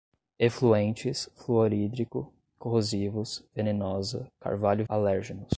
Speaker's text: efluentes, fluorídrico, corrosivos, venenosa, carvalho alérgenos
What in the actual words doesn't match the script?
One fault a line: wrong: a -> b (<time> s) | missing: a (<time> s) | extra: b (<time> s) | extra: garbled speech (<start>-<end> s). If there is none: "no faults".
no faults